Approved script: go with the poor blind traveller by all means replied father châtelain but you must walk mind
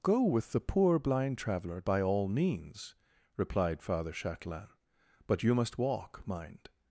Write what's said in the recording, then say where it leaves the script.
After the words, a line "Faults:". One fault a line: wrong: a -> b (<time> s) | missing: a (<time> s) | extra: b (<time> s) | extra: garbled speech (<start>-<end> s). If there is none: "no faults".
go with the poor blind traveller by all means replied father châtelain but you must walk mind
Faults:
no faults